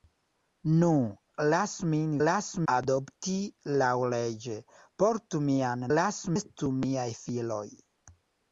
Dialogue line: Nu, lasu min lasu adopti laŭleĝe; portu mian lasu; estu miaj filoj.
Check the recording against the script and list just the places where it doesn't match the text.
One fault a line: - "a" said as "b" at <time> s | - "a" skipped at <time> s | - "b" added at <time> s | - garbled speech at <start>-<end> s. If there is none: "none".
none